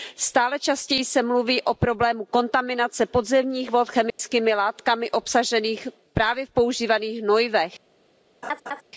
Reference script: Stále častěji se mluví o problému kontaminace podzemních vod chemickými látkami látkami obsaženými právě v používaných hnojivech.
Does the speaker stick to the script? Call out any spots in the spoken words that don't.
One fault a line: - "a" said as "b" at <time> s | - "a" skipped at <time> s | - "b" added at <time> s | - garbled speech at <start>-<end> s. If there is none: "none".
- "látkami" skipped at 5.1 s